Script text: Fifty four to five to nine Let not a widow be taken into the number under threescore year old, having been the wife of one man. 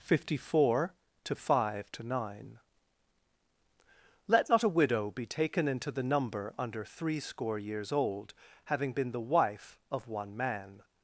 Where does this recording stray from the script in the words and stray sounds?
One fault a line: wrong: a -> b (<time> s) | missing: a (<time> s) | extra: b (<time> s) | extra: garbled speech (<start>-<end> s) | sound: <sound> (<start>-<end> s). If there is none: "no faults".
wrong: year -> years (7.6 s)